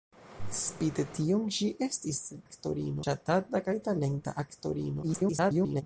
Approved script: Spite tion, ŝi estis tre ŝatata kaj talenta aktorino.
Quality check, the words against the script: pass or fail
fail